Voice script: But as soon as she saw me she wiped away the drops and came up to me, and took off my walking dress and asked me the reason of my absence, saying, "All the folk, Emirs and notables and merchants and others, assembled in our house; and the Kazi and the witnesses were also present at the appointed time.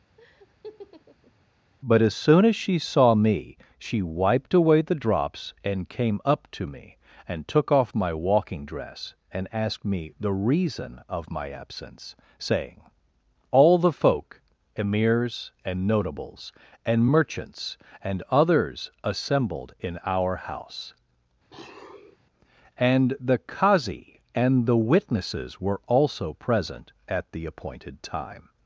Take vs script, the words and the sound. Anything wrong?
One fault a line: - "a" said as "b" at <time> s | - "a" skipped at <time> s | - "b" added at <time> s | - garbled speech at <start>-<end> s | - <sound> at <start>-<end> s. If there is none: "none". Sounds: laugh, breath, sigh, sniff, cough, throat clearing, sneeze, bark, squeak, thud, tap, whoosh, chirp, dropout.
- laugh at 0.2-1.3 s
- sniff at 21.5-22.2 s